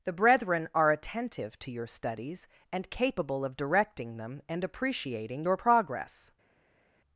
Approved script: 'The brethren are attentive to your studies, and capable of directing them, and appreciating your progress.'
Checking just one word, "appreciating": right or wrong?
right